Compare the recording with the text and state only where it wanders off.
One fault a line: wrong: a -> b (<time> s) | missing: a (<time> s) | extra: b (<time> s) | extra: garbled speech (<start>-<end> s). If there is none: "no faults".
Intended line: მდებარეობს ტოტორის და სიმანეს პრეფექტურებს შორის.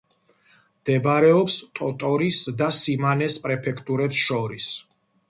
no faults